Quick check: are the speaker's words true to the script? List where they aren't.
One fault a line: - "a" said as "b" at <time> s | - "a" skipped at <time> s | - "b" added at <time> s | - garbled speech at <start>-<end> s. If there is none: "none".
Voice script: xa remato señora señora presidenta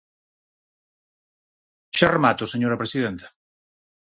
- "señora" skipped at 2.8 s